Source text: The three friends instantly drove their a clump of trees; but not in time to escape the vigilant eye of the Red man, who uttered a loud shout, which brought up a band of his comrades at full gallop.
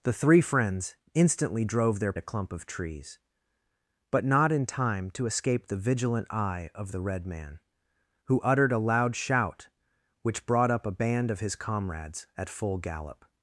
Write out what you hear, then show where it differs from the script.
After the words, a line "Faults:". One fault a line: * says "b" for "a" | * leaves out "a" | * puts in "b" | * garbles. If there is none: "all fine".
The three friends instantly drove their a clump of trees; but not in time to escape the vigilant eye of the Red man, who uttered a loud shout, which brought up a band of his comrades at full gallop.
Faults:
all fine